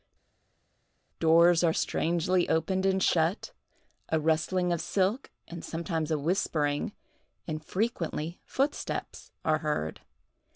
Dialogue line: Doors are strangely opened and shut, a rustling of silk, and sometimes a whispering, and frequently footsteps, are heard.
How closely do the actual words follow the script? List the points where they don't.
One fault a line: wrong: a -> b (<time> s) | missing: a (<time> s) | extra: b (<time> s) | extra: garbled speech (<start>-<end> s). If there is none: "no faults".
no faults